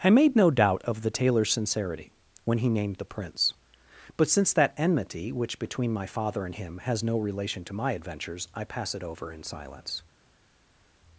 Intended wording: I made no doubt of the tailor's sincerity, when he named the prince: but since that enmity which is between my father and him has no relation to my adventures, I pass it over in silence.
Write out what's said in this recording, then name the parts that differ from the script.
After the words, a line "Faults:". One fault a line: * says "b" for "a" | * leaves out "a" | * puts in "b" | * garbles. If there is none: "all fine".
I made no doubt of the tailor's sincerity, when he named the prince: but since that enmity which between my father and him has no relation to my adventures, I pass it over in silence.
Faults:
* leaves out "is"